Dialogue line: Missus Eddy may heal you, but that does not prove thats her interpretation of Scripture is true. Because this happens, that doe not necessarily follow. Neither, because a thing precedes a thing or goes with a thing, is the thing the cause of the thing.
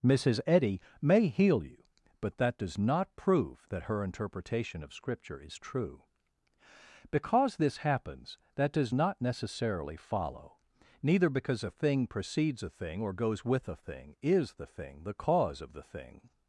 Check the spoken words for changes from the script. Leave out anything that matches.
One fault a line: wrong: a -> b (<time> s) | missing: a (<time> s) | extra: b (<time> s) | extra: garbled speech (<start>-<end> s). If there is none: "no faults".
wrong: thats -> that (3.7 s)
wrong: doe -> does (8.7 s)